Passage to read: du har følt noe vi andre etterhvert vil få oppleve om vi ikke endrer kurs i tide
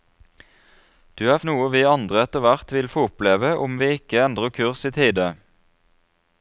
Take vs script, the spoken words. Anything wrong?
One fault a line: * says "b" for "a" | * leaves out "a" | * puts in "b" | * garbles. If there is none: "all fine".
* leaves out "følt"